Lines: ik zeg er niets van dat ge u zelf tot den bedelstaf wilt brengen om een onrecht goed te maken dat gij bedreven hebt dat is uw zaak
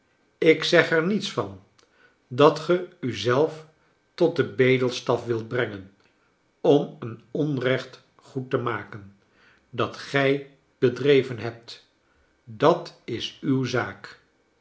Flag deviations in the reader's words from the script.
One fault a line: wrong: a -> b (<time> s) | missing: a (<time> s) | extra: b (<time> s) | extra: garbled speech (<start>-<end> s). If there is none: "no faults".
no faults